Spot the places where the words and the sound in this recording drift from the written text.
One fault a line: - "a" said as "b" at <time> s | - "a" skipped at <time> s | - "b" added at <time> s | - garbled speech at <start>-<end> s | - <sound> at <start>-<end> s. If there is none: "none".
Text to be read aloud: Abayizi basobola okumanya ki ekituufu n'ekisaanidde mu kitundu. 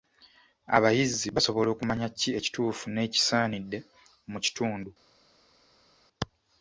none